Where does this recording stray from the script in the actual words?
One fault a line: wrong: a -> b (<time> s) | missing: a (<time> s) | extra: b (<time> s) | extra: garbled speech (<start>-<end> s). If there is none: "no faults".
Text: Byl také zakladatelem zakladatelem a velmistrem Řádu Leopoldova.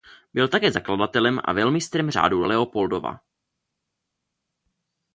missing: zakladatelem (1.4 s)